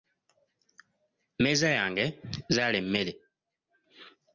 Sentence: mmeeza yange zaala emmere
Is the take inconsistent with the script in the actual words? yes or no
no